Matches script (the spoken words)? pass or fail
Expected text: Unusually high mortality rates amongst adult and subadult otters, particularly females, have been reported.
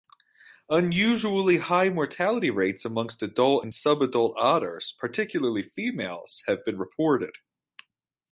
pass